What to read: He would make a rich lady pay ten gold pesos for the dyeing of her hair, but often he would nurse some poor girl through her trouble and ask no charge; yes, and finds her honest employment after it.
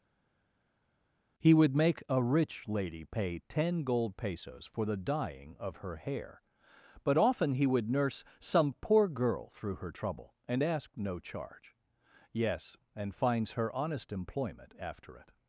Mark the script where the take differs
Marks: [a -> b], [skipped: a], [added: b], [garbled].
He would make a rich lady pay ten gold pesos for the dyeing of her hair, but often he would nurse some poor girl through her trouble and ask no charge; yes, and finds her honest employment after it.